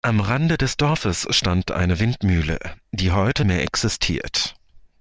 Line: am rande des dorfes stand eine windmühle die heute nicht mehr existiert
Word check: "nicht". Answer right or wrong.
wrong